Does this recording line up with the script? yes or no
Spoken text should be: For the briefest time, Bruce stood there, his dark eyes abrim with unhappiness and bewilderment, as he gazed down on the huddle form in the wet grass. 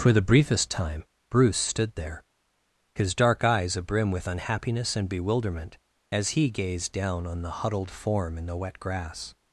no